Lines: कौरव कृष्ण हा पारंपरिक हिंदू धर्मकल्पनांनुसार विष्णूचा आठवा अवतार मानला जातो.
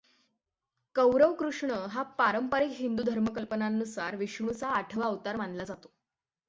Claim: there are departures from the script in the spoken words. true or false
false